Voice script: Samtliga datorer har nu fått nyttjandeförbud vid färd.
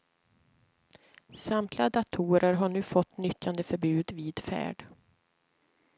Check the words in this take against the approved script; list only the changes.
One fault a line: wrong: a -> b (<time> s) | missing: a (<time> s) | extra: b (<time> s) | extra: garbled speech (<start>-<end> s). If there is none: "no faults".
no faults